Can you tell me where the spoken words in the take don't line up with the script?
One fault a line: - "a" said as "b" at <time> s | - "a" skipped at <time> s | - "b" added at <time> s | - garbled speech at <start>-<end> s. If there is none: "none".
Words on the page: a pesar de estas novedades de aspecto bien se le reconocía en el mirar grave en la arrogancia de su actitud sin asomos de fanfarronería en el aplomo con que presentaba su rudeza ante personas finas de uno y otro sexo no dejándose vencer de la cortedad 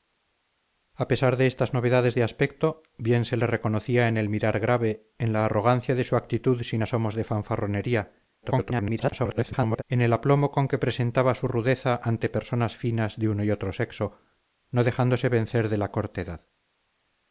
- garbled speech at 8.4-9.8 s